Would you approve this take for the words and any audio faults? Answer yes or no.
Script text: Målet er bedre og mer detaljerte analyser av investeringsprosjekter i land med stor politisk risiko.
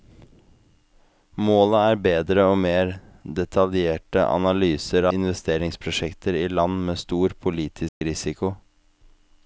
no